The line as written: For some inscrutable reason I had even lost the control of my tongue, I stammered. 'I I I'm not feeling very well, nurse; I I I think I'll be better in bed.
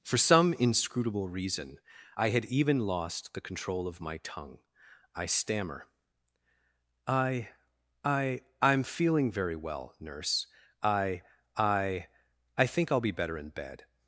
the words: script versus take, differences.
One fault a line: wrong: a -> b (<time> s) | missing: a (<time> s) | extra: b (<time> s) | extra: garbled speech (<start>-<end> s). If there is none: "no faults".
wrong: stammered -> stammer (5.3 s)
missing: not (8.8 s)